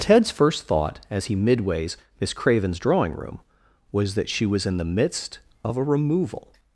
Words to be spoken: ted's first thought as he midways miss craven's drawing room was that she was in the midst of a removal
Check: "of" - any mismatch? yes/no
no